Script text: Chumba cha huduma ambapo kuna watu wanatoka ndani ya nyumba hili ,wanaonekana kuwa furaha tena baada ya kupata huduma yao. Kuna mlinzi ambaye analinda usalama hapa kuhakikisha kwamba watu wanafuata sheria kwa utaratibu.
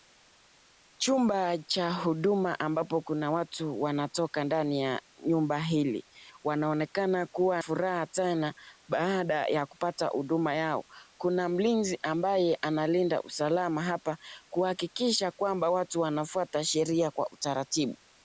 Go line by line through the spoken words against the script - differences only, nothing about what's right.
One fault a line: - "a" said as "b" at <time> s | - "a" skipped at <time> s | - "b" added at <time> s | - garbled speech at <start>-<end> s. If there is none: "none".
none